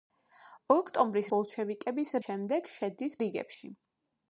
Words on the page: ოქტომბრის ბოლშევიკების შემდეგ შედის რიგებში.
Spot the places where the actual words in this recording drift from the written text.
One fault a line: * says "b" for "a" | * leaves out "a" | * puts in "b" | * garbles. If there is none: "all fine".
all fine